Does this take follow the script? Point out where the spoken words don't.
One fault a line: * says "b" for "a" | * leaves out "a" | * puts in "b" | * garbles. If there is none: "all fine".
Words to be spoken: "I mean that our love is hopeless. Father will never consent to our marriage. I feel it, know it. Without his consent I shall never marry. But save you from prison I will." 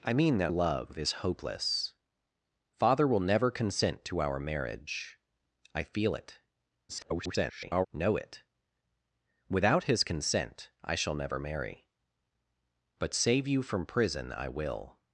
* leaves out "our"
* garbles